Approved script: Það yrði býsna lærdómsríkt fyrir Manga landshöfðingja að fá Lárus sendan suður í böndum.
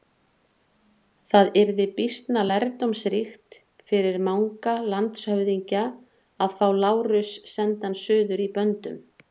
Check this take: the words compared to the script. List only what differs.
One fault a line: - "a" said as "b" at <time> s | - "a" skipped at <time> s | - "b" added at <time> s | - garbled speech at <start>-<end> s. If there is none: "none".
none